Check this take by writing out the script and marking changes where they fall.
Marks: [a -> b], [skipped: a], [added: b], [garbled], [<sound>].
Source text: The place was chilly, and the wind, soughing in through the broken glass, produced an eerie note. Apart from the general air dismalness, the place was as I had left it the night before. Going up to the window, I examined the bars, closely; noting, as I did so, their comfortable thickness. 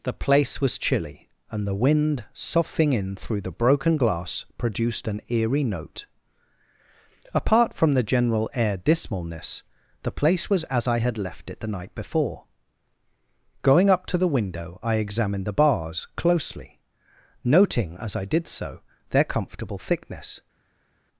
The place was chilly, and the wind, soughing in through the broken glass, produced an eerie note. Apart from the general air dismalness, the place was as I had left it the night before. Going up to the window, I examined the bars, closely; noting, as I did so, their comfortable thickness.